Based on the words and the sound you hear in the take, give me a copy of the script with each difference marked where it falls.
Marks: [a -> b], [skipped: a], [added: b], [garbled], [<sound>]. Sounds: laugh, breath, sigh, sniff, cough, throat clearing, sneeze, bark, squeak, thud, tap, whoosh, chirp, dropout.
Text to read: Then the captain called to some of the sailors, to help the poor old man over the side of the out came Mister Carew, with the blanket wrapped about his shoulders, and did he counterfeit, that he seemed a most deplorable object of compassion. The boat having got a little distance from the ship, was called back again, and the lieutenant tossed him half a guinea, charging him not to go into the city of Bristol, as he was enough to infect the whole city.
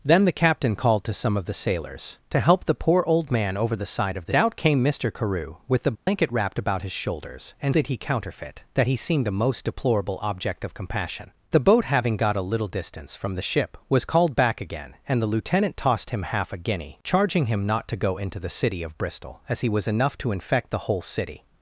Then the captain called to some of the sailors, to help the poor old man over the side of the out came Mister Carew, with the blanket [dropout] wrapped about his shoulders, and did he counterfeit, that he seemed a most deplorable object of compassion. The boat having got a little distance from the ship, was called back again, and the lieutenant tossed him half a guinea, charging him not to go into the city of Bristol, as he was enough to infect the whole city.